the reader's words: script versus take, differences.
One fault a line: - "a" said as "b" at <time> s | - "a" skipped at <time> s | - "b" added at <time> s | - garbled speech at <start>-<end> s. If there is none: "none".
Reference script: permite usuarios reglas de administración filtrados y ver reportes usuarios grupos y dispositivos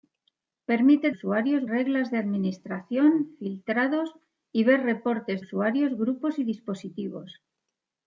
none